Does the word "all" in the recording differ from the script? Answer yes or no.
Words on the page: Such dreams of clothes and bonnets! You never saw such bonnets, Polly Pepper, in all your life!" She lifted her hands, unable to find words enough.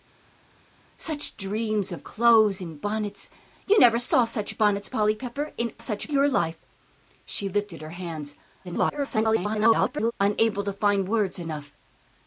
yes